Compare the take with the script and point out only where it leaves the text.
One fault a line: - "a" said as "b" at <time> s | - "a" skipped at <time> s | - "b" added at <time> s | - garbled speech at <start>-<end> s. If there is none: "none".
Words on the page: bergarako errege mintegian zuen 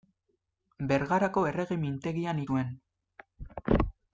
none